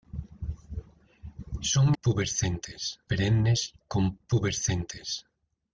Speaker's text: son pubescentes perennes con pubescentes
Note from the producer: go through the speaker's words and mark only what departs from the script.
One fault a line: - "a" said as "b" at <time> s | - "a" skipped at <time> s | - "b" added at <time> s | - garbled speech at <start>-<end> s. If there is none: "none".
none